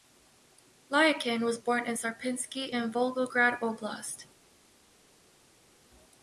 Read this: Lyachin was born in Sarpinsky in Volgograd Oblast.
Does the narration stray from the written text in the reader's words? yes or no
no